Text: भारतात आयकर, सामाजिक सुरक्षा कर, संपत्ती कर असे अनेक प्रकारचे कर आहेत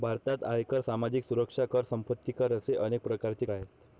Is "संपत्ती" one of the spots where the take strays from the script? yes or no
no